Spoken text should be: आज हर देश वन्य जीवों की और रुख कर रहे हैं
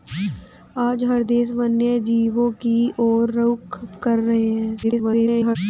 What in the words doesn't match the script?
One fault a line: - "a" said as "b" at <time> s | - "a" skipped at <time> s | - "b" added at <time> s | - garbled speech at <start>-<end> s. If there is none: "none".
- garbled speech at 4.8-5.6 s